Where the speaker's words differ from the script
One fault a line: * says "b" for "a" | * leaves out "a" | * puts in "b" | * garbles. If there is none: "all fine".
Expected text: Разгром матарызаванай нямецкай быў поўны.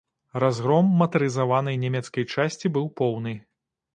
* puts in "часці"